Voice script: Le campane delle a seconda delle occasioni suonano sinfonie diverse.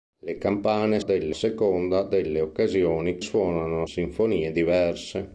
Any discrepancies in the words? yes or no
no